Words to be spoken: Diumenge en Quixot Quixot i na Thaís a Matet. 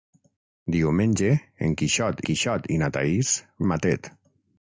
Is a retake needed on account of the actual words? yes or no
no